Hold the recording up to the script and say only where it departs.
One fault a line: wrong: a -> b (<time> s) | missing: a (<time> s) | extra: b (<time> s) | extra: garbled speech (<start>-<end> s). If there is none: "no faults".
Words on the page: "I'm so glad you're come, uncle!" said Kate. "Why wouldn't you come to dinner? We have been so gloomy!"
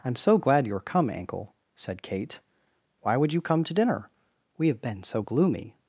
wrong: uncle -> ankle (1.1 s)
wrong: wouldn't -> would (3.2 s)